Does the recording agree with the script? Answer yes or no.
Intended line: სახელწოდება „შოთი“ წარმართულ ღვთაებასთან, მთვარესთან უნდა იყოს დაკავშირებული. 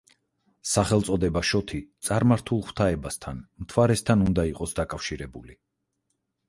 yes